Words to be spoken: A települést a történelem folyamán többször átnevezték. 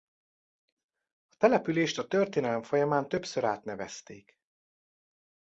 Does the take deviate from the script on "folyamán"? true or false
false